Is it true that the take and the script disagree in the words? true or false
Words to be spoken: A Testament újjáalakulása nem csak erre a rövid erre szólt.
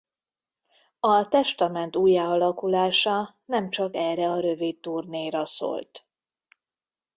true